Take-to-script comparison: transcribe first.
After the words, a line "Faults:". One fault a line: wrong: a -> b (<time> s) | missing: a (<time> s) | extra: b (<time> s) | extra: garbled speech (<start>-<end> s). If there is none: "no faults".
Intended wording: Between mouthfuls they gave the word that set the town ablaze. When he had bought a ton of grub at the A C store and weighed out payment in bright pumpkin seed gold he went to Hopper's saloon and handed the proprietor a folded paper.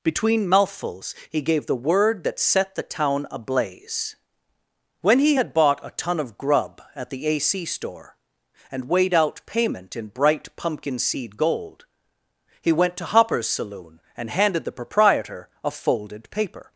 Between mouthfuls he gave the word that set the town ablaze. When he had bought a ton of grub at the A C store and weighed out payment in bright pumpkin seed gold he went to Hopper's saloon and handed the proprietor a folded paper.
Faults:
wrong: they -> he (1.3 s)